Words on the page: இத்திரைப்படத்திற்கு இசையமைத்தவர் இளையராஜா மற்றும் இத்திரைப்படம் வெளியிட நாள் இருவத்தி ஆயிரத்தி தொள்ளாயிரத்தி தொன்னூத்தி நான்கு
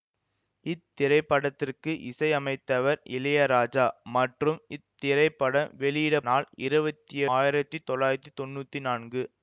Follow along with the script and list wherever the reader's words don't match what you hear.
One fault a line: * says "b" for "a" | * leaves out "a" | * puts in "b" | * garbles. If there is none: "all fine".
all fine